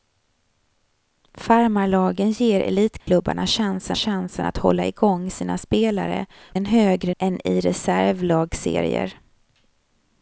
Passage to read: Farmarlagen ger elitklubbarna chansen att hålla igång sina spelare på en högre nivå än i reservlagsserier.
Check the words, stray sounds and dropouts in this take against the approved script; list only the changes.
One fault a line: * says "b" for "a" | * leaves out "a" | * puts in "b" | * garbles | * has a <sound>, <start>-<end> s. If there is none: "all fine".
* has a dropout, 3.0-3.1 s
* puts in "chansen"
* leaves out "på"
* leaves out "nivå"